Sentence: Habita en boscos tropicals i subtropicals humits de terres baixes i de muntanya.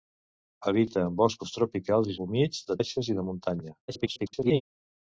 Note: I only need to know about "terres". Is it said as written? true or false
false